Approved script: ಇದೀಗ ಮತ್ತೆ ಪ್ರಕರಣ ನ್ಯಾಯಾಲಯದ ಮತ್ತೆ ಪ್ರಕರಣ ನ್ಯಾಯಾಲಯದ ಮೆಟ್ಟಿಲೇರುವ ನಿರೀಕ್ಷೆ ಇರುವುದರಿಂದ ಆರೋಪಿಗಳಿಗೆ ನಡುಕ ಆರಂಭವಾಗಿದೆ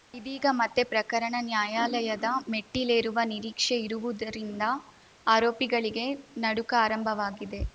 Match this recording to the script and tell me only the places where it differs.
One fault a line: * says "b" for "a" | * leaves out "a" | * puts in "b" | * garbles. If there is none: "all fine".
* leaves out "ಮತ್ತೆ ಪ್ರಕರಣ ನ್ಯಾಯಾಲಯದ"